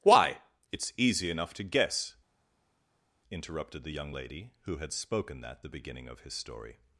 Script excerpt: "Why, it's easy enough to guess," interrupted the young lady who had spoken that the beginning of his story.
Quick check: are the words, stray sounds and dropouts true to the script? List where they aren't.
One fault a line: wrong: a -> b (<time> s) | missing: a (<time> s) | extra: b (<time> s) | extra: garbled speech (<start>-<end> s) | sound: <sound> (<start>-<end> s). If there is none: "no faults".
no faults